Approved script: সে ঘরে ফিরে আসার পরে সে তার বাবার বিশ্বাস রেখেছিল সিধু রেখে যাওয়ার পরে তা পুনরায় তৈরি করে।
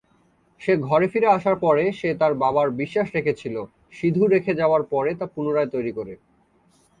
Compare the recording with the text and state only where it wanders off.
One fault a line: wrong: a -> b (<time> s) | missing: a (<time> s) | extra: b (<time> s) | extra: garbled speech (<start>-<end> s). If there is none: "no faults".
no faults